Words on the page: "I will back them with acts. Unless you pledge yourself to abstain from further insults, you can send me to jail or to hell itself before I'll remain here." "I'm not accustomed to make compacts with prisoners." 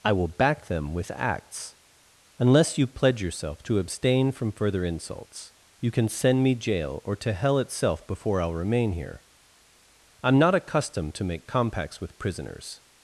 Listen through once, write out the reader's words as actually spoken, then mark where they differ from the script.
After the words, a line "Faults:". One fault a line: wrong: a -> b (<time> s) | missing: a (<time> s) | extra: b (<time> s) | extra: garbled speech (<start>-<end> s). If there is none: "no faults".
"I will back them with acts. Unless you pledge yourself to abstain from further insults, you can send me jail or to hell itself before I'll remain here." "I'm not accustomed to make compacts with prisoners."
Faults:
missing: to (6.6 s)